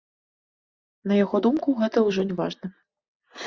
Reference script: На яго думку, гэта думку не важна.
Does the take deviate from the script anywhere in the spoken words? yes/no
yes